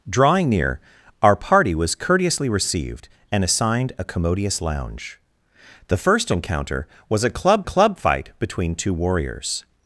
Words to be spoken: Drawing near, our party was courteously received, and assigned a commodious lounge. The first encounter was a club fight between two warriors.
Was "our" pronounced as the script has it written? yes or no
yes